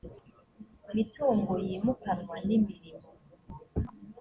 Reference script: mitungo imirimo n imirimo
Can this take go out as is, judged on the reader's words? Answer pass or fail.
fail